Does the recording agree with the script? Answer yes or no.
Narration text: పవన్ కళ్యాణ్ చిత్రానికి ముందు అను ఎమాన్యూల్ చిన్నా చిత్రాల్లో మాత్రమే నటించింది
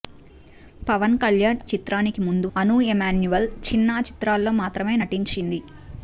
yes